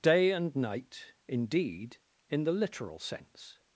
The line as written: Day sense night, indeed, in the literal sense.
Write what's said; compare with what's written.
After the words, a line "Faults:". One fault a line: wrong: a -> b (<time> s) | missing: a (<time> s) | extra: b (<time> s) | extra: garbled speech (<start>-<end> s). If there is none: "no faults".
Day and night, indeed, in the literal sense.
Faults:
wrong: sense -> and (0.3 s)